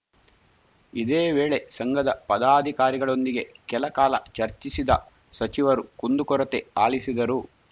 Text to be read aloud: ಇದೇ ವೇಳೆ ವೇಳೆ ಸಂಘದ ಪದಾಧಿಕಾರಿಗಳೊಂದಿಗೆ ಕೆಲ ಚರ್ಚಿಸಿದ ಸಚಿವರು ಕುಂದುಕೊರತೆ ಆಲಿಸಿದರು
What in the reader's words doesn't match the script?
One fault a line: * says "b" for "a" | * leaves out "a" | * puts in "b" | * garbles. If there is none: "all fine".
* leaves out "ವೇಳೆ"
* puts in "ಕಾಲ"